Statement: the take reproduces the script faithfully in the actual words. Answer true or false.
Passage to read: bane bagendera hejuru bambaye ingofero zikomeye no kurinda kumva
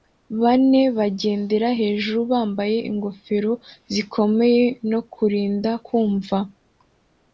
true